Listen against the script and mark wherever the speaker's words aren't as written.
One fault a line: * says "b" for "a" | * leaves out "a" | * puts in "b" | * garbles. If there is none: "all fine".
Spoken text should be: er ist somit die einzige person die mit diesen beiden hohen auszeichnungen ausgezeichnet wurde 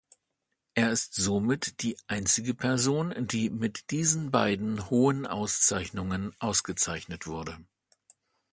all fine